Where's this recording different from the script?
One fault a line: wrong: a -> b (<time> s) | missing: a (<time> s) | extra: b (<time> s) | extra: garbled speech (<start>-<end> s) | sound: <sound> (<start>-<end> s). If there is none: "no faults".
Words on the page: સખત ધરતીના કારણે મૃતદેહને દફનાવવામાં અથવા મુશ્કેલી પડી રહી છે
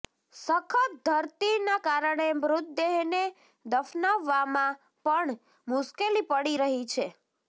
wrong: અથવા -> પણ (5.0 s)